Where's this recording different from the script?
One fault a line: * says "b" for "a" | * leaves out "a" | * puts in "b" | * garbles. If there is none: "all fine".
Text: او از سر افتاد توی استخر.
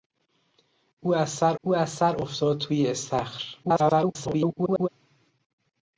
* puts in "او از سر"
* garbles